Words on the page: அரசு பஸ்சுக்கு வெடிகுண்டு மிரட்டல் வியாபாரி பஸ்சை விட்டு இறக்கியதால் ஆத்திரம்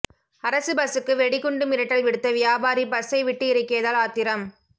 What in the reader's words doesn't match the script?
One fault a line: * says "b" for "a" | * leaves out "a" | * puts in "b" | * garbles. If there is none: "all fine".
* puts in "விடுத்த"